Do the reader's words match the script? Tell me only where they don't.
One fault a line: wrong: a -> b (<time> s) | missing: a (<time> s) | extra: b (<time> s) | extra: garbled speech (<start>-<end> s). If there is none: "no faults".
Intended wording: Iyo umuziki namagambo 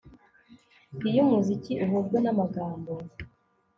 extra: uhujwe (1.8 s)